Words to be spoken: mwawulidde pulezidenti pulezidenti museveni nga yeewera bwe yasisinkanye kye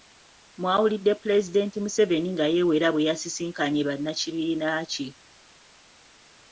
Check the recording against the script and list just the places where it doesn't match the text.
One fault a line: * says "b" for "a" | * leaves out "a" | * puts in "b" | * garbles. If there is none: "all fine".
* leaves out "pulezidenti"
* puts in "bannakibiina"